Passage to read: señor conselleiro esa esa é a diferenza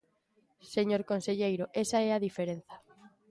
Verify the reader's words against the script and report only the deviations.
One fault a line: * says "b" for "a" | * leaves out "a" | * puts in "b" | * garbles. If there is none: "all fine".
* leaves out "esa"